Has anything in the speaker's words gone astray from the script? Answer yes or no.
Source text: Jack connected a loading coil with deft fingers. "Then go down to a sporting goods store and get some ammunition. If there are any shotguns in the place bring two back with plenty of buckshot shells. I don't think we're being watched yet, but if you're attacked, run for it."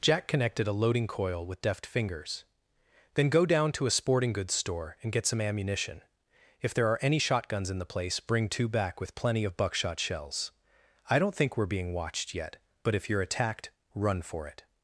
no